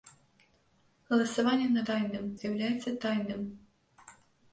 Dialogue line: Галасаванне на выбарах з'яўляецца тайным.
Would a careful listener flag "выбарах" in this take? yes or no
yes